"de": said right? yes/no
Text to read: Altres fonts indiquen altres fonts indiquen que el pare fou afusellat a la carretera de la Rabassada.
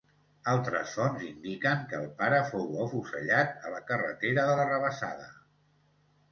yes